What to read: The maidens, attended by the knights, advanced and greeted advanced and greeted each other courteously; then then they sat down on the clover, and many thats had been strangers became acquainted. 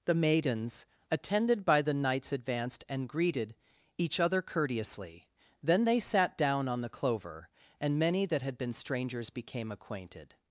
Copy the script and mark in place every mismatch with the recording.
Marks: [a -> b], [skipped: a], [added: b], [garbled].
The maidens, attended by the knights, advanced and greeted [skipped: advanced and greeted] each other courteously; then [skipped: then] they sat down on the clover, and many [thats -> that] had been strangers became acquainted.